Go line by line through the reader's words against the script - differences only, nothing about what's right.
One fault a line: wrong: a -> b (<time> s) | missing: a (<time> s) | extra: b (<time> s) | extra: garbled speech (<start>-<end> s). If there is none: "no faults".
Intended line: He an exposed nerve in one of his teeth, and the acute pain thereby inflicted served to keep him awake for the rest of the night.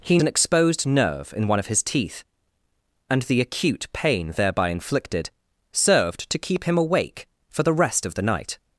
no faults